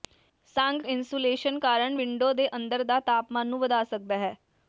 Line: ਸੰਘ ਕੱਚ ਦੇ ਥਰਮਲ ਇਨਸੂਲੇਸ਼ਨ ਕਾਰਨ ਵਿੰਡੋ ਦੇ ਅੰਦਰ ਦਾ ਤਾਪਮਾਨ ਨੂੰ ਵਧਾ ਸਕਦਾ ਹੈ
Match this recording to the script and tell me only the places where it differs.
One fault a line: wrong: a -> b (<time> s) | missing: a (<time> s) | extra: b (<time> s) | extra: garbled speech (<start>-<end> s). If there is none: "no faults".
missing: ਕੱਚ ਦੇ ਥਰਮਲ (0.8 s)